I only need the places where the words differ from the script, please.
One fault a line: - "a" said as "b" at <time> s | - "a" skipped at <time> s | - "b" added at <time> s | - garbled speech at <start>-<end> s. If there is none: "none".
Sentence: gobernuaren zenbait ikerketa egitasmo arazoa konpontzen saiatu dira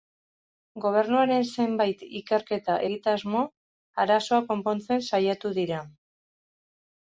none